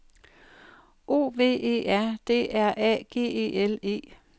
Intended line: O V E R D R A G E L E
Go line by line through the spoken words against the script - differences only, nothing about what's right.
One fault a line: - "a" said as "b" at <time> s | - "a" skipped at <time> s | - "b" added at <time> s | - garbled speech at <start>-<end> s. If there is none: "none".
none